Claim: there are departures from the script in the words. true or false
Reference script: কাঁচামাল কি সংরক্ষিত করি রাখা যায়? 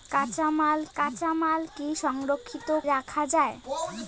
true